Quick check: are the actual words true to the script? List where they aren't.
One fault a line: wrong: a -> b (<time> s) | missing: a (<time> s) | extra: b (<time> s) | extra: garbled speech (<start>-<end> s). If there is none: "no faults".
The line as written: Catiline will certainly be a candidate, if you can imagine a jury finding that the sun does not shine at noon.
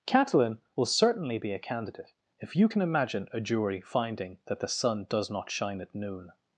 no faults